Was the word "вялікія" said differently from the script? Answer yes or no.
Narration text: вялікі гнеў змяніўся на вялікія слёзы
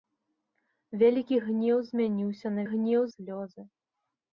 yes